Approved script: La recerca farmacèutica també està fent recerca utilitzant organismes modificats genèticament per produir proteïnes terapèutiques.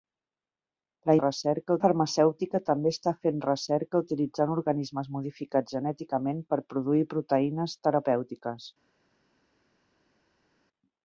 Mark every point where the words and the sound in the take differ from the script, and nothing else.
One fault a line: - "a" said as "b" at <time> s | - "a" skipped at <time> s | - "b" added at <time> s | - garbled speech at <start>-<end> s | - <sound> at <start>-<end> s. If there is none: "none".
none